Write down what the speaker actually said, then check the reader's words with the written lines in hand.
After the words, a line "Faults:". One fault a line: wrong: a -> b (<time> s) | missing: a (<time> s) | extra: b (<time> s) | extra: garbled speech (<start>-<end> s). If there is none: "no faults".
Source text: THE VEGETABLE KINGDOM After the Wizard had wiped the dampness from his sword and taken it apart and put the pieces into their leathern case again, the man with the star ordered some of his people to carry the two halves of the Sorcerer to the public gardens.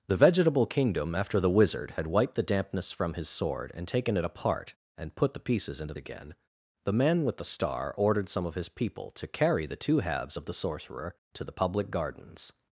THE VEGETABLE KINGDOM After the Wizard had wiped the dampness from his sword and taken it apart and put the pieces into again, the man with the star ordered some of his people to carry the two halves of the Sorcerer to the public gardens.
Faults:
missing: their leathern case (5.9 s)